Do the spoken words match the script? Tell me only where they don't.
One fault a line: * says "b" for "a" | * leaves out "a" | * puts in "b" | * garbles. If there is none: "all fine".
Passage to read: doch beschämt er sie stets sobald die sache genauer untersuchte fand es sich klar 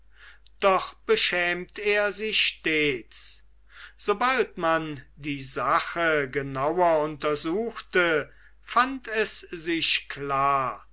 * puts in "man"